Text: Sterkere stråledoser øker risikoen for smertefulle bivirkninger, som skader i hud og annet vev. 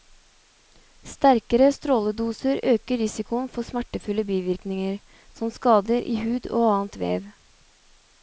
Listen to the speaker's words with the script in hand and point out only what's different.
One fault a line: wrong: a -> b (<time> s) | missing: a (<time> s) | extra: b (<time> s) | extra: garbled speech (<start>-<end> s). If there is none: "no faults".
no faults